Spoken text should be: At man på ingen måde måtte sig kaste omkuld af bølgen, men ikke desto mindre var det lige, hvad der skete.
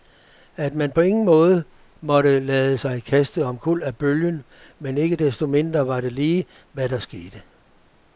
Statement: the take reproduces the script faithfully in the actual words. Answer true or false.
false